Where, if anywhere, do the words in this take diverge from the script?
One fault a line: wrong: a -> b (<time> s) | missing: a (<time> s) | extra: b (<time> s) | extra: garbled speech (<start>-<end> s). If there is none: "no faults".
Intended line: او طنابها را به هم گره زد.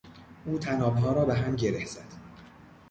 no faults